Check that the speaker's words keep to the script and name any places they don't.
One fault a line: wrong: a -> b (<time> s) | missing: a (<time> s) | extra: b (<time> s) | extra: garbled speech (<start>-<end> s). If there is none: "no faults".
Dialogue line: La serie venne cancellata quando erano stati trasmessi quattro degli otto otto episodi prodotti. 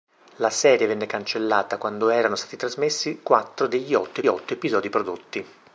no faults